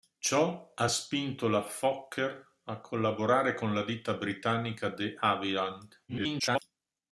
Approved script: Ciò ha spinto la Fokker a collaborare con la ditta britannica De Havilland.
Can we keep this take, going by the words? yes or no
no